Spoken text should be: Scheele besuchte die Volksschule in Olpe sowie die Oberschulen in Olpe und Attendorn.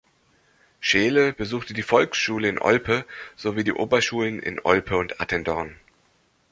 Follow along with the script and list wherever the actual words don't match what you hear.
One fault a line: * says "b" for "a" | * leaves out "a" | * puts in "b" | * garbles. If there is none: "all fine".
all fine